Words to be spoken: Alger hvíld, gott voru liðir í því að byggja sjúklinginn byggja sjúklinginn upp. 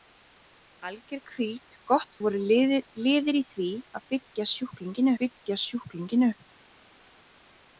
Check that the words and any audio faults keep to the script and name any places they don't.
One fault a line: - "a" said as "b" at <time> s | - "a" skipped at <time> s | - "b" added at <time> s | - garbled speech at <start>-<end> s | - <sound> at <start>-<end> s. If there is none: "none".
none